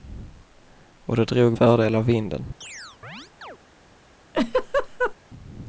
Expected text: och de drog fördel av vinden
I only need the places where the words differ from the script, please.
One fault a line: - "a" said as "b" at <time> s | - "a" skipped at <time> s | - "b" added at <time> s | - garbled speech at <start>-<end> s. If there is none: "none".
none